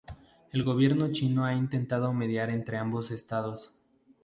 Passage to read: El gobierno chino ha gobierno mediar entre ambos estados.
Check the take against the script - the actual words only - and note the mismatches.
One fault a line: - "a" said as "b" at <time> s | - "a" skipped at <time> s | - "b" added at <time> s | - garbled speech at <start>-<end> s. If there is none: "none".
- "gobierno" said as "intentado" at 1.5 s